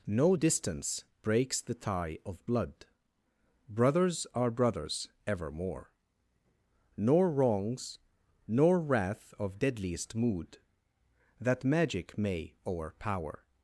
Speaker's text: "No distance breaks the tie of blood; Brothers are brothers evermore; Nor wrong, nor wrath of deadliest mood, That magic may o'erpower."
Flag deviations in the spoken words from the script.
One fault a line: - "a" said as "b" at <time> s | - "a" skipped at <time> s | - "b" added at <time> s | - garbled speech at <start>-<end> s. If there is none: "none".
- "wrong" said as "wrongs" at 7.3 s